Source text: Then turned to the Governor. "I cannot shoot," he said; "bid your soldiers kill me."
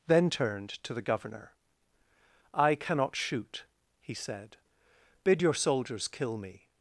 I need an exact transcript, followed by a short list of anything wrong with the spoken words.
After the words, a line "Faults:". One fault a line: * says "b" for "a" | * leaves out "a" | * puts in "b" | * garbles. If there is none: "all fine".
Then turned to the Governor. "I cannot shoot," he said; "bid your soldiers kill me."
Faults:
all fine